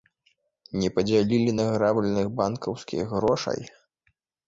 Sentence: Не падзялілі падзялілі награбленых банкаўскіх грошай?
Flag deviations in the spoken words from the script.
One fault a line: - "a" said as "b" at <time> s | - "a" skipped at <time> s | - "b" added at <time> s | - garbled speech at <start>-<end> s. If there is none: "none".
- "падзялілі" skipped at 1.5 s